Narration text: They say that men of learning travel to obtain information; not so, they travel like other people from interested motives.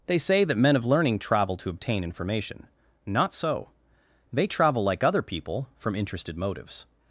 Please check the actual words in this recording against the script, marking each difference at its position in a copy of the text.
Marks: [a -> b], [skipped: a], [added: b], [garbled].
They say that men of learning travel to obtain information; not so, they travel like other people from interested motives.